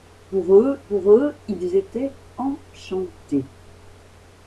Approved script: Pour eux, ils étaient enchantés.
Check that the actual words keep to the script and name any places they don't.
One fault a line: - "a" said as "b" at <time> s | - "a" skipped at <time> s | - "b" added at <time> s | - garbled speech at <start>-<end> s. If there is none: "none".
- "pour eux" added at 0.9 s